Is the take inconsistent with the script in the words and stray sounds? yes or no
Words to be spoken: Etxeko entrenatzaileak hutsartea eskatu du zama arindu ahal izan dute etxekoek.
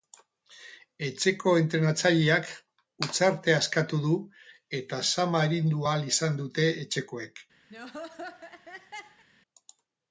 yes